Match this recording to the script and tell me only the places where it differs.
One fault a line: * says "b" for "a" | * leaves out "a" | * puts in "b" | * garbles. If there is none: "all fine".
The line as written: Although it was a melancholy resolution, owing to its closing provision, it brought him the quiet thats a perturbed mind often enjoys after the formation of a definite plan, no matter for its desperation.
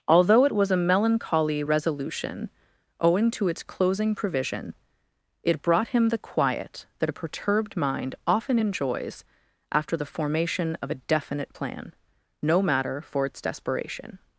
* says "that" for "thats"